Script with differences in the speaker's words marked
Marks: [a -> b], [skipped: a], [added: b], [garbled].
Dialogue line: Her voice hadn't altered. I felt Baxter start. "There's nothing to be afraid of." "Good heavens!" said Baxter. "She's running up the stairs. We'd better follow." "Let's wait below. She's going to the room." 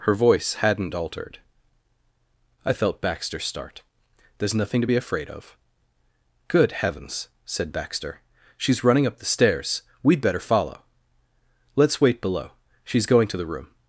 Her voice hadn't altered. I felt Baxter start. "There's nothing to be afraid of." "Good heavens!" said Baxter. "She's running up the stairs. We'd better follow." "Let's wait below. She's going to the room."